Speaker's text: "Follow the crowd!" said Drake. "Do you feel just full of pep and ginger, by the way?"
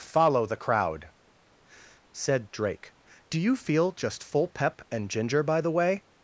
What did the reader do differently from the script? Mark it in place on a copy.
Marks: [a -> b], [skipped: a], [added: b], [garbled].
"Follow the crowd!" said Drake. "Do you feel just full [skipped: of] pep and ginger, by the way?"